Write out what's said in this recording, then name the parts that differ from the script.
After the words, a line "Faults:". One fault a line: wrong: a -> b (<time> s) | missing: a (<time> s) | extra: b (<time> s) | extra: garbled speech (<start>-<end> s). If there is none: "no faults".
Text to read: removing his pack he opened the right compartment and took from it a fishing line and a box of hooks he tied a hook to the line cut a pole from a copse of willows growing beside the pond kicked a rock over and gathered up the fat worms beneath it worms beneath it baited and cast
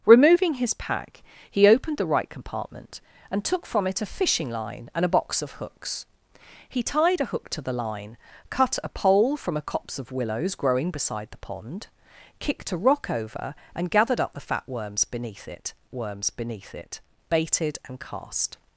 removing his pack he opened the right compartment and took from it a fishing line and a box of hooks he tied a hook to the line cut a pole from a copse of willows growing beside the pond kicked a rock over and gathered up the fat worms beneath it worms beneath it baited and cast
Faults:
no faults